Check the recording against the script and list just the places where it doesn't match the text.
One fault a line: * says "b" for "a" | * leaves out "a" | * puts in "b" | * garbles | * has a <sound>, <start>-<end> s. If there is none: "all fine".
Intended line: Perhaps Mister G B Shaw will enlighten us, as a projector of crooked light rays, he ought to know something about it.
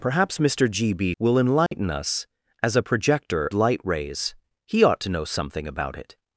* leaves out "Shaw"
* has a dropout, 1.7-1.7 s
* leaves out "of crooked"